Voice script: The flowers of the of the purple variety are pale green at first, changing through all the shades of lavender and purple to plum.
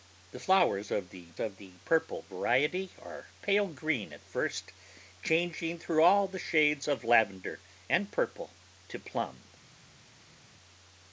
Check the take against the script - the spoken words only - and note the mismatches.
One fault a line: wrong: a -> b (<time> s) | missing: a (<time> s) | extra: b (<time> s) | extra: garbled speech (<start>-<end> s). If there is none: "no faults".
no faults